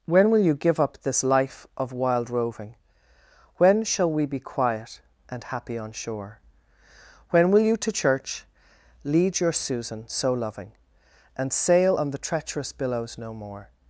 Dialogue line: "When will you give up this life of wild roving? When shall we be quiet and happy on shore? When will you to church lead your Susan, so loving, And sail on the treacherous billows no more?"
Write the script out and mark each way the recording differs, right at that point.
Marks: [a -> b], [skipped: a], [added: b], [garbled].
"When will you give up this life of wild roving? When shall we be quiet and happy on shore? When will you to church lead your Susan, so loving, And sail on the treacherous billows no more?"